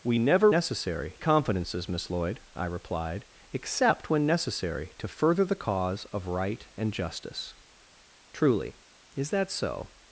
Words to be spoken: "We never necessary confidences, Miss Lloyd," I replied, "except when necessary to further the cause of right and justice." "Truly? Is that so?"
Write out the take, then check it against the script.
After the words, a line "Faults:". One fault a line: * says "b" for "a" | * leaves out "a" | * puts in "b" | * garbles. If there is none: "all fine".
"We never necessary confidences, Miss Lloyd," I replied, "except when necessary to further the cause of right and justice." "Truly? Is that so?"
Faults:
all fine